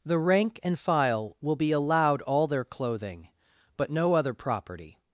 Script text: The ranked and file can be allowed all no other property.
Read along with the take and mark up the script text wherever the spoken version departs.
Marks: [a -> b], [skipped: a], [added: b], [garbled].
The [ranked -> rank] and file [can -> will] be allowed all [added: their clothing but] no other property.